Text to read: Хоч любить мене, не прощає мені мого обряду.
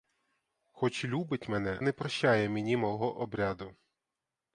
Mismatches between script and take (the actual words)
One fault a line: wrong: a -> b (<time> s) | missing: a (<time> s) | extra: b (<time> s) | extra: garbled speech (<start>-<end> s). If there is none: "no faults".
no faults